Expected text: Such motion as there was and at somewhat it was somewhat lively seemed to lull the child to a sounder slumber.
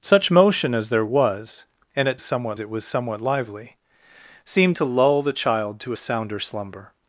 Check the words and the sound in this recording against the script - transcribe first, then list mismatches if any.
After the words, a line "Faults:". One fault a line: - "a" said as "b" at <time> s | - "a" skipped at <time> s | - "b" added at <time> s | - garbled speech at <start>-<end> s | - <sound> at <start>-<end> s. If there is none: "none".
Such motion as there was and at somewhat it was somewhat lively seemed to lull the child to a sounder slumber.
Faults:
none